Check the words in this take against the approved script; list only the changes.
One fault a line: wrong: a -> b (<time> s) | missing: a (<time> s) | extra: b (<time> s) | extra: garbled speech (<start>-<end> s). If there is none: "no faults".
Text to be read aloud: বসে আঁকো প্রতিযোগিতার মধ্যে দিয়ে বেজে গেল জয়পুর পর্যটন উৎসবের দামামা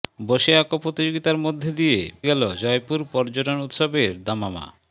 missing: বেজে (2.0 s)